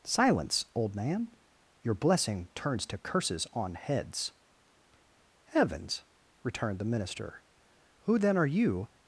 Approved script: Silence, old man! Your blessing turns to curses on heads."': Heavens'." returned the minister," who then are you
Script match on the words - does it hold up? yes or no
yes